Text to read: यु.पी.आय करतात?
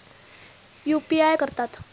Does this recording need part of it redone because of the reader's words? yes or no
no